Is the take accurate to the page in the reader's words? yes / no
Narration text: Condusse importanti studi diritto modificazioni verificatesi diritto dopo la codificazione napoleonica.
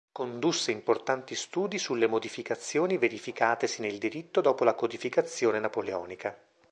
no